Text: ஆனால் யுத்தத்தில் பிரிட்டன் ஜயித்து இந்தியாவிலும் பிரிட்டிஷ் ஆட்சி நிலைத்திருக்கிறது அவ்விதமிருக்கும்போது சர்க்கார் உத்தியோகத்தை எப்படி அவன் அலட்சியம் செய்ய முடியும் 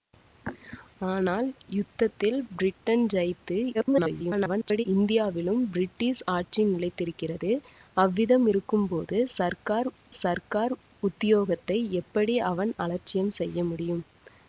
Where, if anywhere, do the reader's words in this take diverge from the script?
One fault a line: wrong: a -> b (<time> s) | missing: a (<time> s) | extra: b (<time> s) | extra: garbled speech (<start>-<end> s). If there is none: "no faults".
extra: garbled speech (3.7-4.8 s)
extra: சர்க்கார் (10.2 s)